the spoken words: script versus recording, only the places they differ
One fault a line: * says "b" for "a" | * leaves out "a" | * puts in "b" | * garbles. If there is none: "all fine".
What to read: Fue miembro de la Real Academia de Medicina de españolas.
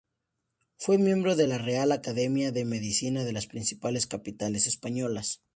* puts in "las principales capitales"